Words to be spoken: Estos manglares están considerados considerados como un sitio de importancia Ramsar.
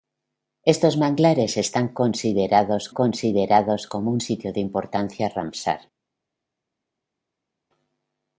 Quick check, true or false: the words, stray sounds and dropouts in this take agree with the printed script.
true